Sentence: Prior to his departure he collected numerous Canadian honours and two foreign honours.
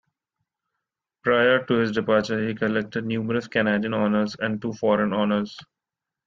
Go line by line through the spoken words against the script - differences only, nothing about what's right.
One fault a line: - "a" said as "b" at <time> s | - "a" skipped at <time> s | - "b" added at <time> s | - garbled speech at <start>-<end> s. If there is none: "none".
none